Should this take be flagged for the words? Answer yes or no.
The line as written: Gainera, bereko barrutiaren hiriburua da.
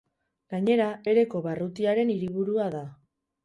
no